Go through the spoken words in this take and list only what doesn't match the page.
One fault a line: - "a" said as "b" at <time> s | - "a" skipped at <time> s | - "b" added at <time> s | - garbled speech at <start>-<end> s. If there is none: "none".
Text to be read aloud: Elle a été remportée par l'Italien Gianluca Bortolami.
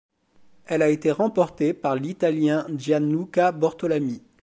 none